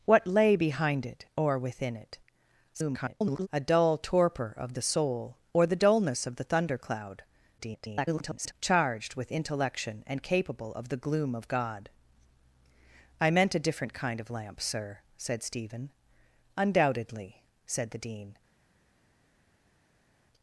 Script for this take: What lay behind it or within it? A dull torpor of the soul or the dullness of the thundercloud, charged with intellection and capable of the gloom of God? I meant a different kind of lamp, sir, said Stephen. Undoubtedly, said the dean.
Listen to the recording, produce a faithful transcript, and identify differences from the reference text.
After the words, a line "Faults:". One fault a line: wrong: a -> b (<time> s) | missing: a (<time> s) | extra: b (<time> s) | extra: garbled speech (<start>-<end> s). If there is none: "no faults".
What lay behind it or within it? [garbled] A dull torpor of the soul or the dullness of the thundercloud, [garbled] charged with intellection and capable of the gloom of God? I meant a different kind of lamp, sir, said Stephen. Undoubtedly, said the dean.
Faults:
extra: garbled speech (2.7-3.5 s)
extra: garbled speech (7.6-8.5 s)